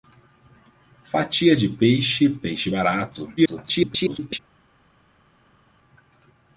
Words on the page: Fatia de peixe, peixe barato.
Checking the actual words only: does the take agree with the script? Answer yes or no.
no